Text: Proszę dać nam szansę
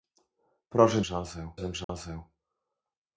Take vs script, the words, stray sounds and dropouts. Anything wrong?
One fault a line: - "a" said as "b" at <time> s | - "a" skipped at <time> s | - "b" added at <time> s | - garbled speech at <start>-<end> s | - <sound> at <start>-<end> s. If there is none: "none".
- "dać" said as "szansę" at 1.0 s
- dropout at 1.8-1.9 s